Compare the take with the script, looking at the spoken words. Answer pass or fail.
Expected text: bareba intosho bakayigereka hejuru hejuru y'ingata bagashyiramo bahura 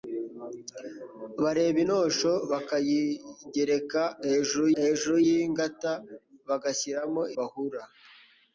pass